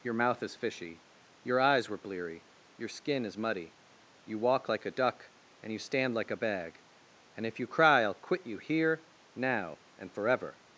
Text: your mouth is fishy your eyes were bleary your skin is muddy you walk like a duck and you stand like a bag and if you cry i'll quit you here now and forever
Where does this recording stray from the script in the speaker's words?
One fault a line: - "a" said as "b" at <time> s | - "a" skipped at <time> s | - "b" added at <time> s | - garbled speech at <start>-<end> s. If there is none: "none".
none